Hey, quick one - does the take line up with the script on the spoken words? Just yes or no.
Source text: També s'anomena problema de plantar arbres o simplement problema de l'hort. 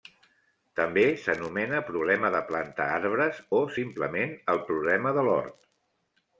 no